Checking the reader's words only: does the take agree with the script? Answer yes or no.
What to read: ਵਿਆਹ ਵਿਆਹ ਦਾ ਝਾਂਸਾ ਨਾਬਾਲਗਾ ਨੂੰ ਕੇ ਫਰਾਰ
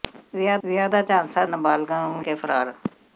yes